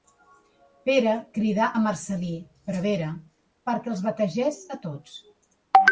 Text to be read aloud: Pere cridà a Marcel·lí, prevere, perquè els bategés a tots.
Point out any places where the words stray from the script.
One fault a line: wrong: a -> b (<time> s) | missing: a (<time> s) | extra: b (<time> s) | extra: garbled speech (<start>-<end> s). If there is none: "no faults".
no faults